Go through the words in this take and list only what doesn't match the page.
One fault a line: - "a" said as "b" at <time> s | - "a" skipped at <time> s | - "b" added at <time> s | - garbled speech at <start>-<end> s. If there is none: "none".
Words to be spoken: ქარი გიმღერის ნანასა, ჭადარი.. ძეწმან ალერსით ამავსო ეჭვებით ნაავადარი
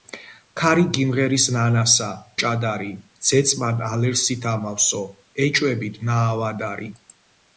none